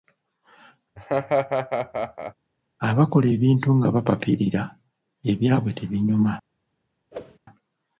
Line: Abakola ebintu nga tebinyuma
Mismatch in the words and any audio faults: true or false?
true